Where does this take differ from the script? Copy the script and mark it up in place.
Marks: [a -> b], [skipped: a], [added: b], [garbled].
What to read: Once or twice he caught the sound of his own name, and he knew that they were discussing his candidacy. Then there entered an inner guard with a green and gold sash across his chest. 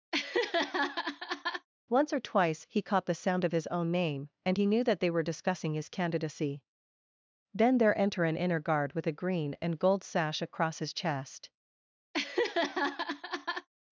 Once or twice he caught the sound of his own name, and he knew that they were discussing his candidacy. Then there [entered -> enter] an inner guard with a green and gold sash across his chest.